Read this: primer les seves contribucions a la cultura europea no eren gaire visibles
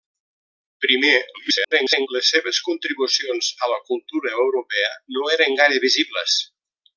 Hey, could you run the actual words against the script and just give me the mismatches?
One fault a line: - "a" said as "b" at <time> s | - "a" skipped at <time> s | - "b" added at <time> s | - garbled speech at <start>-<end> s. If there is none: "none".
- garbled speech at 1.3-2.1 s